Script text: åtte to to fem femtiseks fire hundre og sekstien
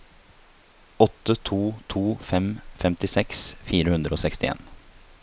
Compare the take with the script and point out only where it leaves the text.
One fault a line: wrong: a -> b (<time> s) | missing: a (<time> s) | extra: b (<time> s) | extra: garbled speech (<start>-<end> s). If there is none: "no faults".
no faults